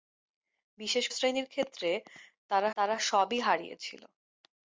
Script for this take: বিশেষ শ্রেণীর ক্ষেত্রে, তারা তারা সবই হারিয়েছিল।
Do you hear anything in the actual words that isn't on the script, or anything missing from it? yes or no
no